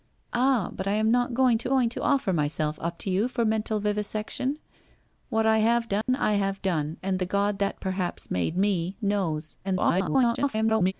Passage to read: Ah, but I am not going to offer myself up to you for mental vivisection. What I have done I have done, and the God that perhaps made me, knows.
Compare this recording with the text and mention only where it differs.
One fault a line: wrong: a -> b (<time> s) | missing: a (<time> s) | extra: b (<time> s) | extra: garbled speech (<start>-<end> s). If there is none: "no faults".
extra: going to (1.7 s)
extra: garbled speech (9.6-10.9 s)